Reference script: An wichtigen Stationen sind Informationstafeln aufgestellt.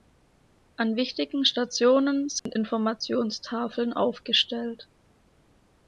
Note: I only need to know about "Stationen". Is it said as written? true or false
true